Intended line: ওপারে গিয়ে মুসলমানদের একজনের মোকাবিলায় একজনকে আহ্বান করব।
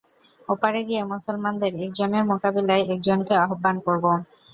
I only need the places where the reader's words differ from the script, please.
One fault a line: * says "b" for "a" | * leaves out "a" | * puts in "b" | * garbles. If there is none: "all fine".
all fine